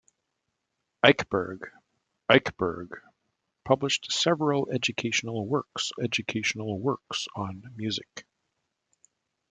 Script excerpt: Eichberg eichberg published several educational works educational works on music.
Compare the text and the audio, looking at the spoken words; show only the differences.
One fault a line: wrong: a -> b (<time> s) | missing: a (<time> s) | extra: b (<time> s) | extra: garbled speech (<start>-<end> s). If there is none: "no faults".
no faults